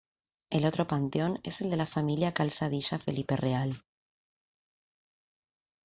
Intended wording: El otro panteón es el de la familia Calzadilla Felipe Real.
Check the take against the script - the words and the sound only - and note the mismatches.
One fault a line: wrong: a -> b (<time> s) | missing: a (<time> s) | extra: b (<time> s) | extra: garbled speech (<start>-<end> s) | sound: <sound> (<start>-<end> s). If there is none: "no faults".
no faults